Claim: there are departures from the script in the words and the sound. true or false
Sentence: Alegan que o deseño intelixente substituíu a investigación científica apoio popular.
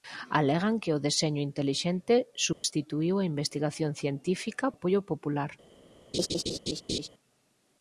true